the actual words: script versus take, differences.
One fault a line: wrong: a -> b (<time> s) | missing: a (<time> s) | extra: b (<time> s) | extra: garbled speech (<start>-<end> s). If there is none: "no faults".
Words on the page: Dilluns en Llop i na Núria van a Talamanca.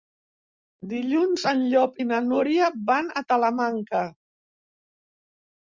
no faults